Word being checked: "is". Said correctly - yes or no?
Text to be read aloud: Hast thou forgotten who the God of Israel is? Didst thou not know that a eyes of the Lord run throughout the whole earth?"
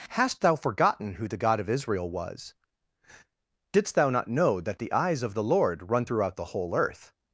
no